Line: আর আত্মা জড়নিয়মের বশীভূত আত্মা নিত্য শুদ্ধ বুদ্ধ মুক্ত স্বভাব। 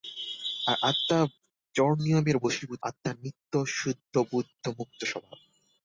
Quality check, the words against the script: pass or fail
pass